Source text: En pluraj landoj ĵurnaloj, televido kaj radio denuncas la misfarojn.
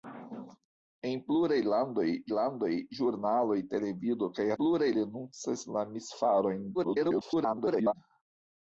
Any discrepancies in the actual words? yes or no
yes